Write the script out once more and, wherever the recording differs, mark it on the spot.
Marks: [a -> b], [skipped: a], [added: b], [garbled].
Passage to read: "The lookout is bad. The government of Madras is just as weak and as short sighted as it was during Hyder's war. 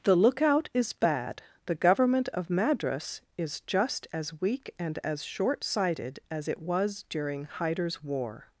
"The lookout is bad. The government of Madras is just as weak and as short sighted as it was during Hyder's war.